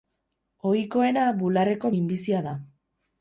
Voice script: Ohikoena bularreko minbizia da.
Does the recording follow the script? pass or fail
pass